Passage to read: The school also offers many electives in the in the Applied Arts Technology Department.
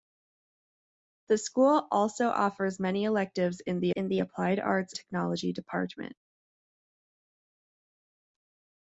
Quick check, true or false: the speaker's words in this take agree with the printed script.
true